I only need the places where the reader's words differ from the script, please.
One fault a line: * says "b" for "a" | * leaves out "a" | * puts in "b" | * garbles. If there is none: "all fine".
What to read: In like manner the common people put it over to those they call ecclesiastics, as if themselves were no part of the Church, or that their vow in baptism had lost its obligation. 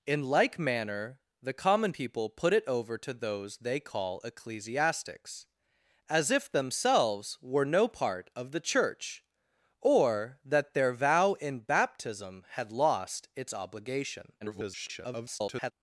* garbles